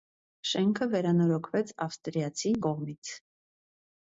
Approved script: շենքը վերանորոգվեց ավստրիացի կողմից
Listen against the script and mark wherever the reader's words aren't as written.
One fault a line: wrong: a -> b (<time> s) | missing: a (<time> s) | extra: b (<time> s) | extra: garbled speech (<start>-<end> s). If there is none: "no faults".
no faults